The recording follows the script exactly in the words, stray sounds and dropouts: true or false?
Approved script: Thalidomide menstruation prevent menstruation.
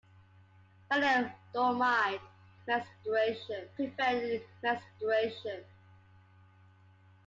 true